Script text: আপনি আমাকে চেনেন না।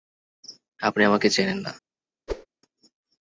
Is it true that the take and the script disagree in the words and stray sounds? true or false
true